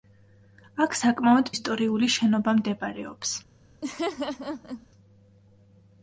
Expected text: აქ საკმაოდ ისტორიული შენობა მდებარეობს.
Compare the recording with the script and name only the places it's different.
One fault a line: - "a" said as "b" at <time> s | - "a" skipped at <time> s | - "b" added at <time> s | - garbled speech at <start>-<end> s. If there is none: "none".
none